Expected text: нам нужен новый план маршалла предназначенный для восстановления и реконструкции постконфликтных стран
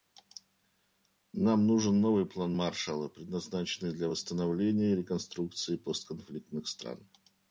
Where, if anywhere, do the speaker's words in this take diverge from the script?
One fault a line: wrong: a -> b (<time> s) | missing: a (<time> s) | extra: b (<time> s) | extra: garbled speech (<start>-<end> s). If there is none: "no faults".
no faults